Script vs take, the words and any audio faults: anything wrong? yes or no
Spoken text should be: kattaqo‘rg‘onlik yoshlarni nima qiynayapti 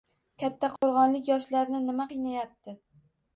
yes